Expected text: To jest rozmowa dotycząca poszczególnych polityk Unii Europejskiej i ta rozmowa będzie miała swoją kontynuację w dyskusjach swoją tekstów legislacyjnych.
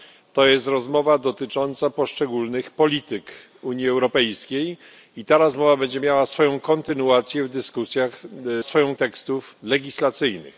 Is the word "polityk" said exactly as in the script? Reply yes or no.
yes